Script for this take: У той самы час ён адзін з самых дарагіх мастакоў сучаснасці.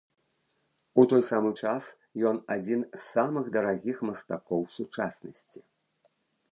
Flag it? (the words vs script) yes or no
no